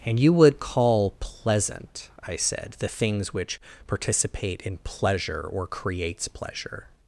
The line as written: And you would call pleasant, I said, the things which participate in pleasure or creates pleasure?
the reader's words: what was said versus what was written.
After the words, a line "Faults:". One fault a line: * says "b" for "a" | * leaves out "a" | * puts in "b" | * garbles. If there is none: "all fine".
And you would call pleasant, I said, the things which participate in pleasure or creates pleasure?
Faults:
all fine